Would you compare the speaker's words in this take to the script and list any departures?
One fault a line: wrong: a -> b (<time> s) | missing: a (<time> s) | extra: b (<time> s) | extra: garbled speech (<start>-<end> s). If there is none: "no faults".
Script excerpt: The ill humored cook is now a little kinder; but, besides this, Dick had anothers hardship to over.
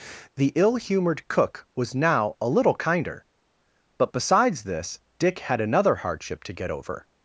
wrong: is -> was (1.8 s)
wrong: anothers -> another (5.6 s)
extra: get (6.5 s)